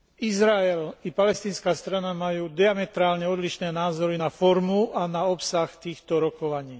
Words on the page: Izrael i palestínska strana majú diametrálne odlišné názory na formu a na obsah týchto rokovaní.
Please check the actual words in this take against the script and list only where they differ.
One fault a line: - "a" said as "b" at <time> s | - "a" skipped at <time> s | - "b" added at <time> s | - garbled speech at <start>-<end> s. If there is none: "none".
none